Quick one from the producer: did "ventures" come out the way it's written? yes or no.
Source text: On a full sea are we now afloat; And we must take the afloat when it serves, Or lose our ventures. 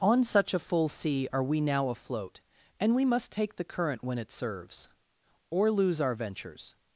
yes